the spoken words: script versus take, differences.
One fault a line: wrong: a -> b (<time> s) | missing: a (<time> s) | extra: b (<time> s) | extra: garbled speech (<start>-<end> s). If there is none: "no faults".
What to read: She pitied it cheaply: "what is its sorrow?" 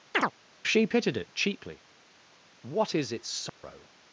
no faults